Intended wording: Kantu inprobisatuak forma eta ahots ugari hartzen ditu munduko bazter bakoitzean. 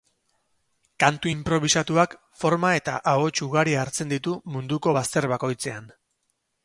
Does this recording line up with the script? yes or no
yes